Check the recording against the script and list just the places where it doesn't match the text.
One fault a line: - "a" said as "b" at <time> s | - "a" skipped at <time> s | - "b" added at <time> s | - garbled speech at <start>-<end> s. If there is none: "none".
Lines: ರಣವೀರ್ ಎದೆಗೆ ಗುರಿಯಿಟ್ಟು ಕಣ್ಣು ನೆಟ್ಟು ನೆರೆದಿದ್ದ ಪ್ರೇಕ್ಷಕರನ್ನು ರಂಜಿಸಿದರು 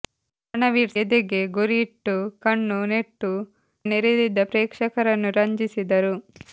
none